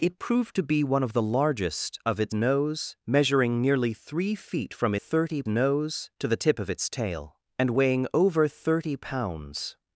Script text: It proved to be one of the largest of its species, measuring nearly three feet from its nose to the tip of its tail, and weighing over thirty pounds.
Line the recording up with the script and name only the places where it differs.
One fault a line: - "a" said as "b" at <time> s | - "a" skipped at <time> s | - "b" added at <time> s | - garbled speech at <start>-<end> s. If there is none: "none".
- "species" said as "nose" at 2.3 s
- "its" said as "thirty" at 5.0 s